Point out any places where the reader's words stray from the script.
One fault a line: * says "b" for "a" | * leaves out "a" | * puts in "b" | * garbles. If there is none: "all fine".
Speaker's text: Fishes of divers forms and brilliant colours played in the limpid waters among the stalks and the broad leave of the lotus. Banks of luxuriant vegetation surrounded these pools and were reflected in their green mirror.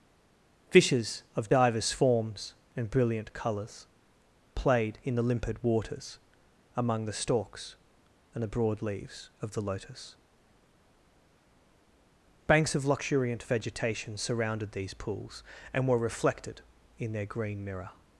* says "leaves" for "leave"